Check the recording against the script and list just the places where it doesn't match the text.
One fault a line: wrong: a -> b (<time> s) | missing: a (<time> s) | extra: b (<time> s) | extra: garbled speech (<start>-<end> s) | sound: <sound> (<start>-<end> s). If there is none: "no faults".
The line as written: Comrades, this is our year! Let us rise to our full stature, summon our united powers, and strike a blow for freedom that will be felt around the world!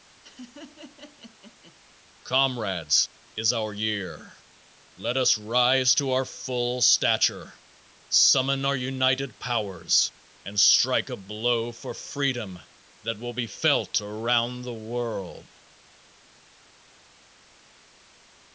sound: laugh (0.2-1.8 s)
missing: this (3.1 s)